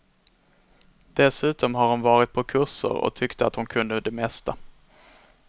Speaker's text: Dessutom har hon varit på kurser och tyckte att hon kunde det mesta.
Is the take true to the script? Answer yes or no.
yes